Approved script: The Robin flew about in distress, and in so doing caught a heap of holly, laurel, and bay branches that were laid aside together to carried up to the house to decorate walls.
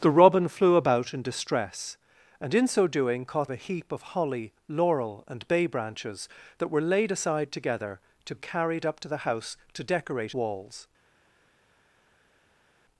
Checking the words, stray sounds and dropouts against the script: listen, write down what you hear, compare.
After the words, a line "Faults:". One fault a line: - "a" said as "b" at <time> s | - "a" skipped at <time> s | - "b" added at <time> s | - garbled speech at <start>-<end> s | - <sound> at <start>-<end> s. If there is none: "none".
The Robin flew about in distress, and in so doing caught a heap of holly, laurel, and bay branches that were laid aside together to carried up to the house to decorate walls.
Faults:
none